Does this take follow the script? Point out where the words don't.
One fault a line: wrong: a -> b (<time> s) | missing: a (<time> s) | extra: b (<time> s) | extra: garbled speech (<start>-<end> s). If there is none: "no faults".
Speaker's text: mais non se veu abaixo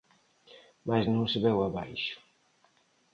no faults